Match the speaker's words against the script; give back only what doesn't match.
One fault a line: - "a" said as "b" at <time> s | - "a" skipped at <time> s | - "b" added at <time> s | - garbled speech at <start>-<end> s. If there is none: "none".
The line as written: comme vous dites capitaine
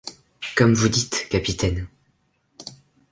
none